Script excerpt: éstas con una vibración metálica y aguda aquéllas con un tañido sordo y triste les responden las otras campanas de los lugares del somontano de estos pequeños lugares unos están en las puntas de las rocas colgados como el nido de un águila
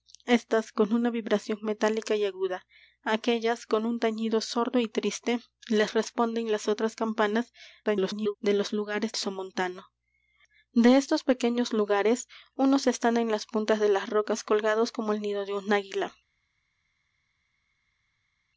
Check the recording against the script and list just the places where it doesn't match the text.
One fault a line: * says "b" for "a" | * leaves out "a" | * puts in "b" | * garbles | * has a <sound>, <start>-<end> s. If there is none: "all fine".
* garbles
* leaves out "del"